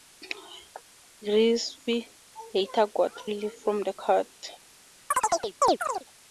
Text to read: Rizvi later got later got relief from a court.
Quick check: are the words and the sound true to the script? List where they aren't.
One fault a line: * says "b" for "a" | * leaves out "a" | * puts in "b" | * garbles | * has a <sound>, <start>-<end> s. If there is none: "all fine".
* leaves out "later got"
* says "the" for "a"
* has a chirp, 5.1-6.0 s